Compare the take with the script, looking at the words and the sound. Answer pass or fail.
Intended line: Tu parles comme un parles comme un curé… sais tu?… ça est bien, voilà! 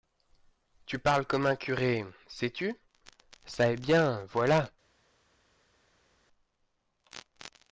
fail